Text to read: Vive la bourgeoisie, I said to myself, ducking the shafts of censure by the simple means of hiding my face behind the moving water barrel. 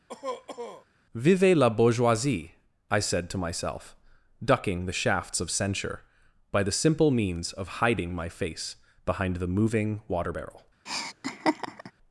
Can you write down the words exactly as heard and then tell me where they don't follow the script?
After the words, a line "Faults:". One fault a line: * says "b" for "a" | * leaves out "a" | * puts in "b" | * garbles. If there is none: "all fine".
Vive la bourgeoisie, I said to myself, ducking the shafts of censure by the simple means of hiding my face behind the moving water barrel.
Faults:
all fine